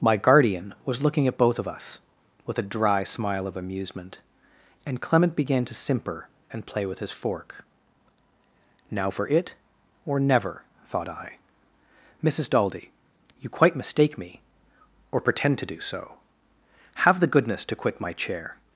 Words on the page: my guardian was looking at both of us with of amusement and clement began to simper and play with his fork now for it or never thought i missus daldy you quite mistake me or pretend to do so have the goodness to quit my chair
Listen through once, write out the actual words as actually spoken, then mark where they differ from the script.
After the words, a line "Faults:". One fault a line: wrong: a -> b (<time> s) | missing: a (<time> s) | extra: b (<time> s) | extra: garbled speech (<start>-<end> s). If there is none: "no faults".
my guardian was looking at both of us with a dry smile of amusement and clement began to simper and play with his fork now for it or never thought i missus daldy you quite mistake me or pretend to do so have the goodness to quit my chair
Faults:
extra: a dry smile (2.6 s)